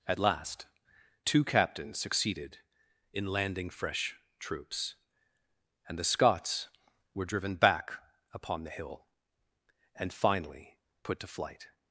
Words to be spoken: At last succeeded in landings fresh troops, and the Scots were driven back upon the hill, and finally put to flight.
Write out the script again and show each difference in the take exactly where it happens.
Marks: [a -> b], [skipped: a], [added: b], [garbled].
At last [added: two captains] succeeded in [landings -> landing] fresh troops, and the Scots were driven back upon the hill, and finally put to flight.